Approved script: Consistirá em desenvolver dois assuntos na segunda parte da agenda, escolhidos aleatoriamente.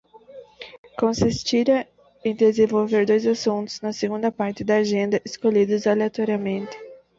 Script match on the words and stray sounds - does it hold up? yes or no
yes